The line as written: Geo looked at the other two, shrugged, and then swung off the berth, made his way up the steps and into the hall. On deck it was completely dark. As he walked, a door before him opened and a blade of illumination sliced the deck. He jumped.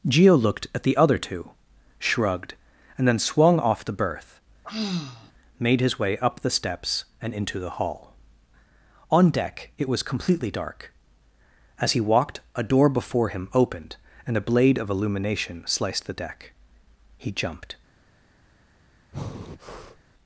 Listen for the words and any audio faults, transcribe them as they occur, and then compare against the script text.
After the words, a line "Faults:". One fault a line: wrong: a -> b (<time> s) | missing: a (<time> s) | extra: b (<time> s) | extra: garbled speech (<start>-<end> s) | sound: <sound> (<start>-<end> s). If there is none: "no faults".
Geo looked at the other two, shrugged, and then swung off the berth, made his way up the steps and into the hall. On deck it was completely dark. As he walked, a door before him opened and a blade of illumination sliced the deck. He jumped.
Faults:
sound: sigh (4.6-5.3 s)
sound: breath (19.1-20.0 s)